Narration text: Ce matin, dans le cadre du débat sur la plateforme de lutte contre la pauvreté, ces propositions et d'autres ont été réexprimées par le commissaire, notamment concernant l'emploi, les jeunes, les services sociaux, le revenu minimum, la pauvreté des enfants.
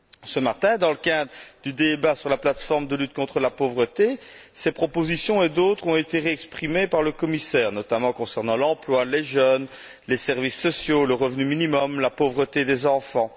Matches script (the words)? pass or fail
pass